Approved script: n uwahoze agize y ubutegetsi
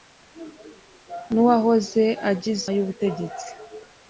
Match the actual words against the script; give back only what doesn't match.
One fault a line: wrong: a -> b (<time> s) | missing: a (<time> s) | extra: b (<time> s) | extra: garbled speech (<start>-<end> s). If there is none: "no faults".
no faults